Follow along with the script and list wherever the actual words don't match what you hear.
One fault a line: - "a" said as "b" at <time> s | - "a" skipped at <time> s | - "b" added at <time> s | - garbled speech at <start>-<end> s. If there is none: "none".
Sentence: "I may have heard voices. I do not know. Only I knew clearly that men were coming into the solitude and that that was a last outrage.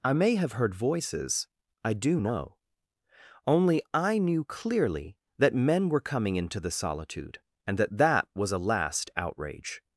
- "not" skipped at 2.2 s